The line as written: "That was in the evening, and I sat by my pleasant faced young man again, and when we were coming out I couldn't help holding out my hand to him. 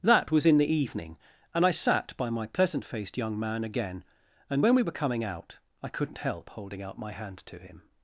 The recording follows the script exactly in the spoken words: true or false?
true